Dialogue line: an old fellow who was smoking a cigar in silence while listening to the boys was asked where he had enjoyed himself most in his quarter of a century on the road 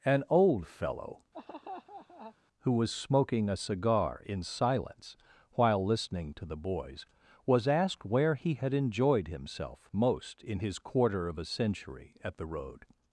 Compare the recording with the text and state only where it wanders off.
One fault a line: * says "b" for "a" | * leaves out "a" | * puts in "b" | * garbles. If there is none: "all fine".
* says "at" for "on"